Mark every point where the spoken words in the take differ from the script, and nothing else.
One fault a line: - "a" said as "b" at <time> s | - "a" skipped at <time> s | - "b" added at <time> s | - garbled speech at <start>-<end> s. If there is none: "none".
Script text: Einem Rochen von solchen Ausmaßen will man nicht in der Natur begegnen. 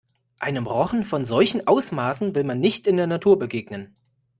none